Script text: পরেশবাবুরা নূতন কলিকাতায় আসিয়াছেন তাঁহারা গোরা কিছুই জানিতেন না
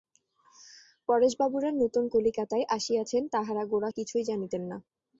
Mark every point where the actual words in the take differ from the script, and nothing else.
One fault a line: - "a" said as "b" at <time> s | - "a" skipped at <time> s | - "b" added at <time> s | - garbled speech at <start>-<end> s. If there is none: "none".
none